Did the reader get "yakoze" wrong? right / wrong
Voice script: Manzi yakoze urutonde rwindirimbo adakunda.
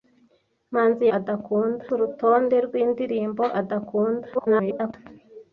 wrong